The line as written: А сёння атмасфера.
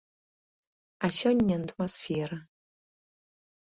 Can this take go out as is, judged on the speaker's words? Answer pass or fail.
pass